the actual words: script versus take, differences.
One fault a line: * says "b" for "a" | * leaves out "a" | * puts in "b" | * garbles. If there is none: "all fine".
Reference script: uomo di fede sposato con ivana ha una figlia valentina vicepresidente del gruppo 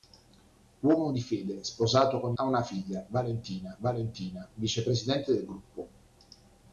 * leaves out "ivana"
* puts in "valentina"